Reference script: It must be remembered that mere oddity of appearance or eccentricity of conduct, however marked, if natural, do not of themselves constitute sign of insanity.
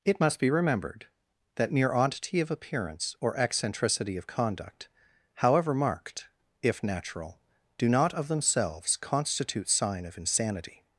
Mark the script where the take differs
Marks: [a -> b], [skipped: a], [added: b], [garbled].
It must be remembered that mere oddity of appearance or eccentricity of conduct, however marked, if natural, do not of themselves constitute sign of insanity.